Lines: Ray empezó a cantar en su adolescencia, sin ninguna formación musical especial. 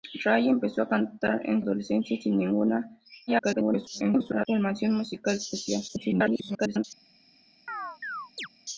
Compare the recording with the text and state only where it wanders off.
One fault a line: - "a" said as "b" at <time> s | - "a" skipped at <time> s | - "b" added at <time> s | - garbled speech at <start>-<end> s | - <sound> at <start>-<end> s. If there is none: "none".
- "su" skipped at 1.6 s
- garbled speech at 3.3-4.5 s
- garbled speech at 5.9-6.8 s
- chirp at 7.7-8.5 s